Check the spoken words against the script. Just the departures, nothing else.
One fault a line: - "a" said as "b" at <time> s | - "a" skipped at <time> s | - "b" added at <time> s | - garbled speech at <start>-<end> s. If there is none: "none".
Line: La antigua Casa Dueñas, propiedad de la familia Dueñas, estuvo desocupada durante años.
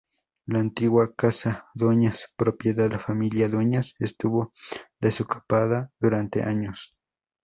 - "de" skipped at 2.9 s